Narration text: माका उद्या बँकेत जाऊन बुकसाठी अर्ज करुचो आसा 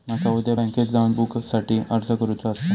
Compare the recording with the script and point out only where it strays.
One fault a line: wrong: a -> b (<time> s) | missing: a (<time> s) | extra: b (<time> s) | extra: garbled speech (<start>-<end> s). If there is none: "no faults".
no faults